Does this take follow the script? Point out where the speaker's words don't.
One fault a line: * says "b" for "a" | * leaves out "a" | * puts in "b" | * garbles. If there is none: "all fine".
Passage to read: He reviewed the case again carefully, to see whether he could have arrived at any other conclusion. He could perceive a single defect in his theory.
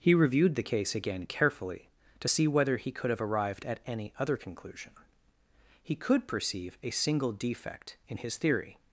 all fine